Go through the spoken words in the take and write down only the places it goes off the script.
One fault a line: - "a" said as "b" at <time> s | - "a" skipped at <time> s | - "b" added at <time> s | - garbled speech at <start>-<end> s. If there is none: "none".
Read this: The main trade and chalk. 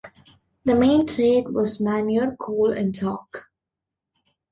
- "was manure coal" added at 1.5 s